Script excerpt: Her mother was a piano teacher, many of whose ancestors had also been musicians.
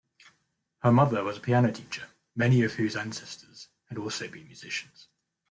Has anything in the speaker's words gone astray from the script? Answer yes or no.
no